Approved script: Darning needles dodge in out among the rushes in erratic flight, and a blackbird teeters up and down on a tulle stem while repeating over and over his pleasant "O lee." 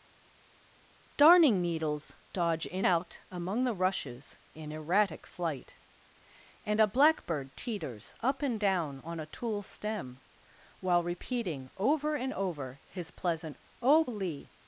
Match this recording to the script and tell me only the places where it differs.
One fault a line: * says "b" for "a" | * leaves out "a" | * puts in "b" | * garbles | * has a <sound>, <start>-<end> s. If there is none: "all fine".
all fine